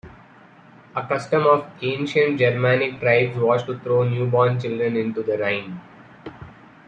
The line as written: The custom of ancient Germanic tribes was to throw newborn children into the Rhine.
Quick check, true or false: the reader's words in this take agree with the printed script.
false